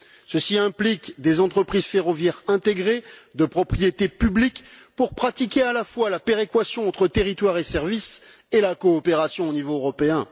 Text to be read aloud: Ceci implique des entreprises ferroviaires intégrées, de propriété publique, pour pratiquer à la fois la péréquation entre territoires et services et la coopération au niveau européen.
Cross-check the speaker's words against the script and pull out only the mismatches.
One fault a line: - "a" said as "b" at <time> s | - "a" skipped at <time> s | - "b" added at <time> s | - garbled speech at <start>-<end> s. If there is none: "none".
none